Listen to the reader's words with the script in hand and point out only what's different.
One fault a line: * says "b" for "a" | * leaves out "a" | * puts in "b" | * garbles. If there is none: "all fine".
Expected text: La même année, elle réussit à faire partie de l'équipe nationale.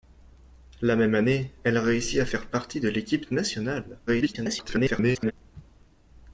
* garbles